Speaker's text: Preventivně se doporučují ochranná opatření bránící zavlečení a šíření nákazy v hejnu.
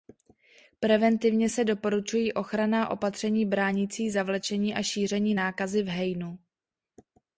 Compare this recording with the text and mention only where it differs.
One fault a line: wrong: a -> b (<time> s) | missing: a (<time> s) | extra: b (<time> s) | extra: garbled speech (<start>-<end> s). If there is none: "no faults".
no faults